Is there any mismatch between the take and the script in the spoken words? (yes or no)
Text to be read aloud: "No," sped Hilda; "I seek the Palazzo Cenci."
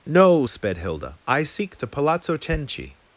no